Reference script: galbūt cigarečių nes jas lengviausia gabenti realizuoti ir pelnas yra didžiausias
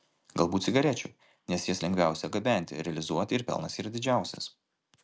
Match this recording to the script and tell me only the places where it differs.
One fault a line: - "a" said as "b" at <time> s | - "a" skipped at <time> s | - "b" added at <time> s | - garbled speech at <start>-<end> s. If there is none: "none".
none